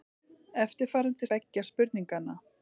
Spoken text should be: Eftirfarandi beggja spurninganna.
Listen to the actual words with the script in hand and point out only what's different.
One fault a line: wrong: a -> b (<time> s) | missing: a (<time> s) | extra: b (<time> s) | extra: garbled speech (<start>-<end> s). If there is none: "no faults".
no faults